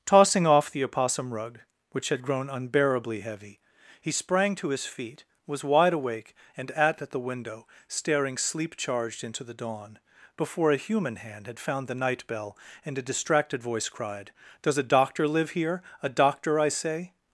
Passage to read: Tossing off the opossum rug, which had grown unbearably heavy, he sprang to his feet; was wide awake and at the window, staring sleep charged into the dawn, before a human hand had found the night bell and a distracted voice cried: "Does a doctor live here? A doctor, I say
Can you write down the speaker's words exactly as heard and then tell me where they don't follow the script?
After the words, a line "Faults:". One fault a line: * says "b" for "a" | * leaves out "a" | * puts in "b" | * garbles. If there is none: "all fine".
Tossing off the opossum rug, which had grown unbearably heavy, he sprang to his feet; was wide awake and at at the window, staring sleep charged into the dawn, before a human hand had found the night bell and a distracted voice cried: "Does a doctor live here? A doctor, I say
Faults:
* puts in "at"